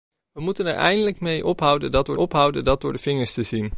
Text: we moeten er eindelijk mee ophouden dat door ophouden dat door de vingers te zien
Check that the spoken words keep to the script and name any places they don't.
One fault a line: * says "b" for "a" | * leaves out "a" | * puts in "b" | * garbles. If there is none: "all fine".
all fine